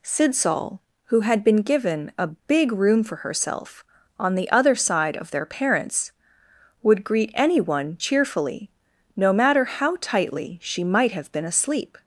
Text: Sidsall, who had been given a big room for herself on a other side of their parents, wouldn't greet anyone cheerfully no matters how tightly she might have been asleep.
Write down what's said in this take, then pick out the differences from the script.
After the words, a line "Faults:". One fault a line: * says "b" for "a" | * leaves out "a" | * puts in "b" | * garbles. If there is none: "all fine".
Sidsall, who had been given a big room for herself on the other side of their parents, would greet anyone cheerfully no matter how tightly she might have been asleep.
Faults:
* says "the" for "a"
* says "would" for "wouldn't"
* says "matter" for "matters"